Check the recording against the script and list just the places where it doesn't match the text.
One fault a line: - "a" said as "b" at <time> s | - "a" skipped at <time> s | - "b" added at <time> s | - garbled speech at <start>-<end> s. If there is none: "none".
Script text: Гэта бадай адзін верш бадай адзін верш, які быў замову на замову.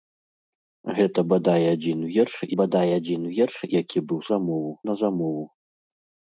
none